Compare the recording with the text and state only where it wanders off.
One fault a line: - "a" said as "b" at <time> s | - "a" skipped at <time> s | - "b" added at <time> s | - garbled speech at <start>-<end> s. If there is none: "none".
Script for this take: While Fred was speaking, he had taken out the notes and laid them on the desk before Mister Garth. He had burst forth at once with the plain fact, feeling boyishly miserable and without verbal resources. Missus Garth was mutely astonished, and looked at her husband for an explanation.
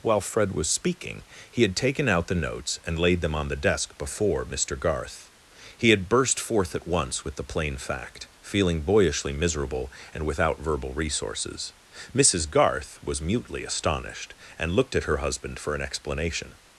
none